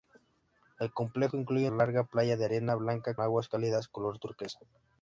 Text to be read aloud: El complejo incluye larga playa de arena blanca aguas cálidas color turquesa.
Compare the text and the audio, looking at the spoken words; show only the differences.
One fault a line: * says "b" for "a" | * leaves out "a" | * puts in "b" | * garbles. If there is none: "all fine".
all fine